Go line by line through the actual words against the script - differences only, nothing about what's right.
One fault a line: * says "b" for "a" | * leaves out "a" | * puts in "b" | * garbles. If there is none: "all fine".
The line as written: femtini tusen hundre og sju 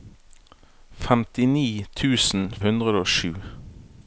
all fine